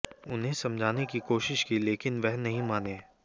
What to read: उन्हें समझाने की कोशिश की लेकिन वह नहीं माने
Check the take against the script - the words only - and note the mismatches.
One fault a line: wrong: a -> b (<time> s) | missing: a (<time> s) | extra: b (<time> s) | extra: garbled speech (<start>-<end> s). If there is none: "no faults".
no faults